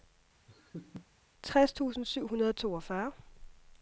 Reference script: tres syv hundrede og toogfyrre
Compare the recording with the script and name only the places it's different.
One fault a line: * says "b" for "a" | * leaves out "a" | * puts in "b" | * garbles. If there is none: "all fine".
* puts in "tusind"